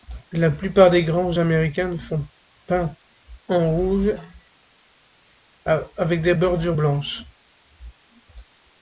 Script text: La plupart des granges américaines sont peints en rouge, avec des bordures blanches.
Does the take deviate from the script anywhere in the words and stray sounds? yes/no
no